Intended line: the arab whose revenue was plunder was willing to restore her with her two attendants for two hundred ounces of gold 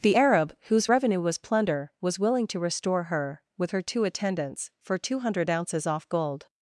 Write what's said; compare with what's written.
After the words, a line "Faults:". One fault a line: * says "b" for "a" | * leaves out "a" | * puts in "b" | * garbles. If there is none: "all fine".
the arab whose revenue was plunder was willing to restore her with her two attendants for two hundred ounces off gold
Faults:
* says "off" for "of"